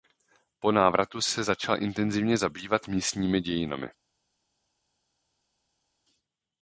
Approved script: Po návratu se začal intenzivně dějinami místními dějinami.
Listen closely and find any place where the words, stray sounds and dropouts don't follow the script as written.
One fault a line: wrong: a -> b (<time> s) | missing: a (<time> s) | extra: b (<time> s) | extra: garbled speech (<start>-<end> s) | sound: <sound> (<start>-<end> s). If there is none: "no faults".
wrong: dějinami -> zabývat (2.4 s)